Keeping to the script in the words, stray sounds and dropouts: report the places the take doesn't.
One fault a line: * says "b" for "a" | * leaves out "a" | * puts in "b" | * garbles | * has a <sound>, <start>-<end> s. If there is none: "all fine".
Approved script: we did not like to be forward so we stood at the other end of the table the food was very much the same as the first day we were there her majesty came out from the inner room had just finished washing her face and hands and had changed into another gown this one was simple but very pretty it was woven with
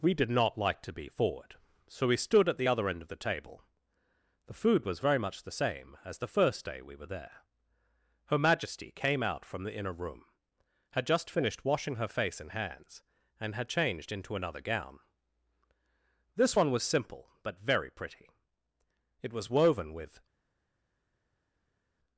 all fine